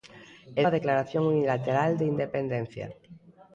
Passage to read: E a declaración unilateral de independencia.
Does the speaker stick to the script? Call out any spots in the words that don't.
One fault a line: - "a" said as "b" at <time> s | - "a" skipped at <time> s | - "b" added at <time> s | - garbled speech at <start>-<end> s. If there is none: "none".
none